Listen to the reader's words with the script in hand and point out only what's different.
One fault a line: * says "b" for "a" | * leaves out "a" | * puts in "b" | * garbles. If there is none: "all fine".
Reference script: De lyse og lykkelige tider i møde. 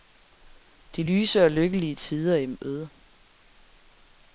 all fine